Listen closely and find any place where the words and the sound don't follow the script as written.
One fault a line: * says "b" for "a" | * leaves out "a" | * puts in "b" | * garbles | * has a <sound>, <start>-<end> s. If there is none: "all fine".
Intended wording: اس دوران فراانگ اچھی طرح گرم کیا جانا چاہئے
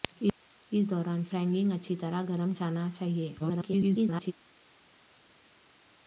* leaves out "کیا"
* garbles